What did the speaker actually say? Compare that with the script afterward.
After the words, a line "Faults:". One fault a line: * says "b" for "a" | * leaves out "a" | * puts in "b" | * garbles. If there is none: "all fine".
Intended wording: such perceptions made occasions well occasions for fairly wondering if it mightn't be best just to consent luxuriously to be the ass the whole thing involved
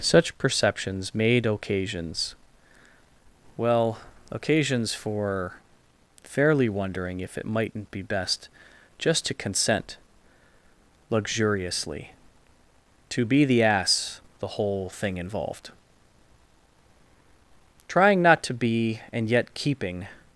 such perceptions made occasions well occasions for fairly wondering if it mightn't be best just to consent luxuriously to be the ass the whole thing involved trying not to be and yet keeping
Faults:
* puts in "trying not to be and yet keeping"